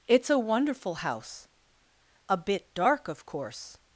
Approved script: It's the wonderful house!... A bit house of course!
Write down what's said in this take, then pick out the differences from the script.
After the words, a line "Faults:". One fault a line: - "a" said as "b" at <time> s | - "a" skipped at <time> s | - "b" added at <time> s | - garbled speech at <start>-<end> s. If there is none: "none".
It's a wonderful house!... A bit dark of course!
Faults:
- "the" said as "a" at 0.3 s
- "house" said as "dark" at 2.7 s